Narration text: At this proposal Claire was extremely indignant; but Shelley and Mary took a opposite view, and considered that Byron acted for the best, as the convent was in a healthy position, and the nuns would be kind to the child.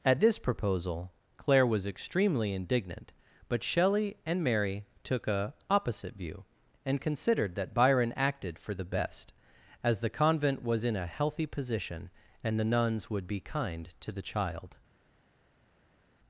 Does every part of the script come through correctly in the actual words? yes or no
yes